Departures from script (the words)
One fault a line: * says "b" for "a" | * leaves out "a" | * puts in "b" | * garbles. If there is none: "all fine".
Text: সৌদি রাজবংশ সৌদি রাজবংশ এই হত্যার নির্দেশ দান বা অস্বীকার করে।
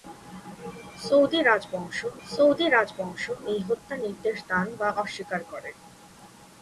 all fine